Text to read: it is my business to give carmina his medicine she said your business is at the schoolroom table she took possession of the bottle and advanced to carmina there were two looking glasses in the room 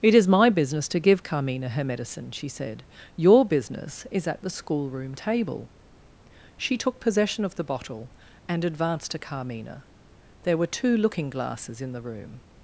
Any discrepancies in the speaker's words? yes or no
yes